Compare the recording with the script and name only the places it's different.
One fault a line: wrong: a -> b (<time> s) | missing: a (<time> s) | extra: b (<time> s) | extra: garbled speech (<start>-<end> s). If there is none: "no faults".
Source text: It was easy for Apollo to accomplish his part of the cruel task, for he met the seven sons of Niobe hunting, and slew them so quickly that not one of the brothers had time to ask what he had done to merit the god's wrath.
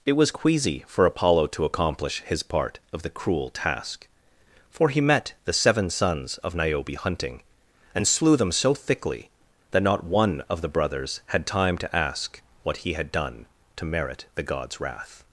wrong: easy -> queasy (0.3 s)
wrong: quickly -> thickly (8.7 s)